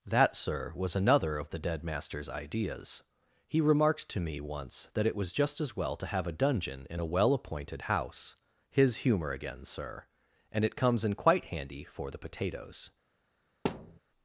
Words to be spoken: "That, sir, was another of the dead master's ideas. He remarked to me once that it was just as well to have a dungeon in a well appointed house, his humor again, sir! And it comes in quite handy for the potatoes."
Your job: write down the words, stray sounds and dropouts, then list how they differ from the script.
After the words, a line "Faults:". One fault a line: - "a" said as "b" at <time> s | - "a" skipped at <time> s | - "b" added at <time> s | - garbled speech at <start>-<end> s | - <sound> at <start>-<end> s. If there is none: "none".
"That, sir, was another of the dead master's ideas. He remarked to me once that it was just as well to have a dungeon in a well appointed house, his humor again, sir! And it comes in quite handy for the potatoes."
Faults:
- thud at 13.6-14.0 s